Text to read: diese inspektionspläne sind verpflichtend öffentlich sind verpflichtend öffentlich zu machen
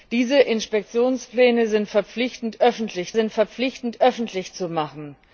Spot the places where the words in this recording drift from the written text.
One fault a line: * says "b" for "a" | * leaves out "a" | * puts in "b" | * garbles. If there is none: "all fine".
all fine